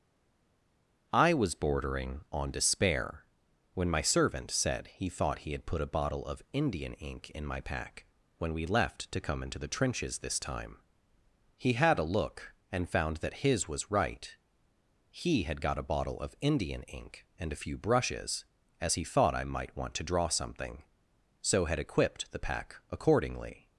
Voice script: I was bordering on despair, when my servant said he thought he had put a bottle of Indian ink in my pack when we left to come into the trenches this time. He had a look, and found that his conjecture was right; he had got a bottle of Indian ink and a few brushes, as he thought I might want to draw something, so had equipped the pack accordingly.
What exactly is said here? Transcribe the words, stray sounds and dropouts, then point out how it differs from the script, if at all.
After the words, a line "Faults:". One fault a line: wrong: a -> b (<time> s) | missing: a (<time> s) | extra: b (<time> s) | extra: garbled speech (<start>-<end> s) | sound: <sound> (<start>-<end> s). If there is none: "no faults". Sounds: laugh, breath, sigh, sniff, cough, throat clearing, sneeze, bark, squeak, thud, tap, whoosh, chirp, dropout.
I was bordering on despair, when my servant said he thought he had put a bottle of Indian ink in my pack when we left to come into the trenches this time. He had a look, and found that his was right; he had got a bottle of Indian ink and a few brushes, as he thought I might want to draw something, so had equipped the pack accordingly.
Faults:
missing: conjecture (13.7 s)